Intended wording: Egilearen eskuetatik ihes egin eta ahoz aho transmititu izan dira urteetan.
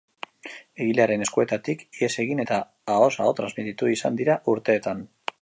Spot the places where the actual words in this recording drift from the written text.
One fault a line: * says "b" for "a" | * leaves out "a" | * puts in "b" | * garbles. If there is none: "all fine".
all fine